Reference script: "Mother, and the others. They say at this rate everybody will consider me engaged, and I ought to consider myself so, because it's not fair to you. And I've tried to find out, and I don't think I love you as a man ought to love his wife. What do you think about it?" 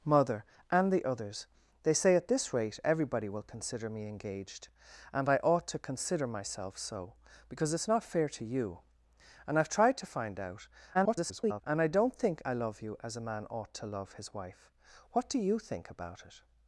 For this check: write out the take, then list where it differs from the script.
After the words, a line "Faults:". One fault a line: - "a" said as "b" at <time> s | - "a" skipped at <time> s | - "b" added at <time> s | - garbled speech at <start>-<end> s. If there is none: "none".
"Mother, and the others. They say at this rate everybody will consider me engaged, and I ought to consider myself so, because it's not fair to you. And I've tried to find out, [garbled] and I don't think I love you as a man ought to love his wife. What do you think about it?"
Faults:
- garbled speech at 10.9-11.6 s